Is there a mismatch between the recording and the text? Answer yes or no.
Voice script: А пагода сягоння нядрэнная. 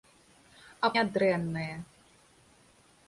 yes